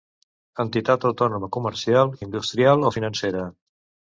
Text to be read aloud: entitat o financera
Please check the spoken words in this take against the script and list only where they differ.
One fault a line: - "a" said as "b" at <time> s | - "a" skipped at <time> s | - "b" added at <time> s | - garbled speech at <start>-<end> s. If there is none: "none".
- "autònoma comercial industrial" added at 1.1 s